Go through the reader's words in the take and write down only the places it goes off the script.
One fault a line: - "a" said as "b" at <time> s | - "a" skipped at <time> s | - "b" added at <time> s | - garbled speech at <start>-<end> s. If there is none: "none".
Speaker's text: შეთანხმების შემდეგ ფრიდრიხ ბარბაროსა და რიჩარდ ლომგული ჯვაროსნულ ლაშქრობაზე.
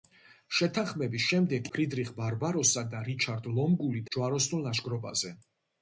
none